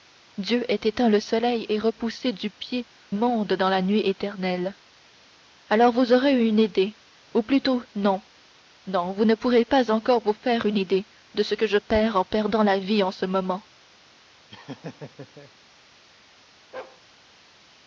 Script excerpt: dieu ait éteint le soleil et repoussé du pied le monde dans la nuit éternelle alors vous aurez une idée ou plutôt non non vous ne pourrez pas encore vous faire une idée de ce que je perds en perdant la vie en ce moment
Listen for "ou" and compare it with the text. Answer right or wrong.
right